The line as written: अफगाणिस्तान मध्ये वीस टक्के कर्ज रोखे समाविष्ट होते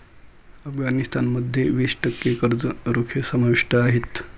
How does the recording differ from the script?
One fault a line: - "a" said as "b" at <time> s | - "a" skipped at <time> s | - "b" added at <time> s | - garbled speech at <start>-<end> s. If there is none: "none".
- "होते" said as "आहेत" at 3.8 s